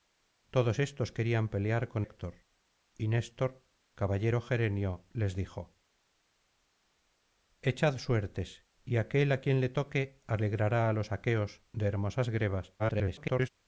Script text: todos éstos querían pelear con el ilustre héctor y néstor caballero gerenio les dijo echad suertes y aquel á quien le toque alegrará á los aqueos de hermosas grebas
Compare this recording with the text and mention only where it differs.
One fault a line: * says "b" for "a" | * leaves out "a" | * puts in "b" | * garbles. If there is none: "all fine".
* leaves out "el ilustre"
* garbles